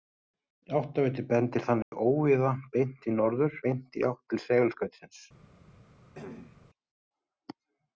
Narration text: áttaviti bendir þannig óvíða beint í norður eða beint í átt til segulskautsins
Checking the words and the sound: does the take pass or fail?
fail